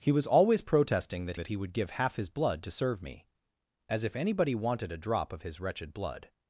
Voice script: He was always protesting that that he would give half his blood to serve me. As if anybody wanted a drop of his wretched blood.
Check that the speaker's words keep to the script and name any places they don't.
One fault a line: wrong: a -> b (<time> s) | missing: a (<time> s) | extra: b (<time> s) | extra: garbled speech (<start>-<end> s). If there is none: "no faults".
no faults